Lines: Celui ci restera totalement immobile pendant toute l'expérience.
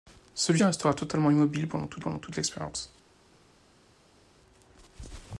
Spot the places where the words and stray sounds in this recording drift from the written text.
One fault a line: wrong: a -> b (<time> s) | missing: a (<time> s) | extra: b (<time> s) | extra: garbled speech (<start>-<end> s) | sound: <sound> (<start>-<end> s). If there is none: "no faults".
missing: ci (0.6 s)
extra: pendant toute (2.0 s)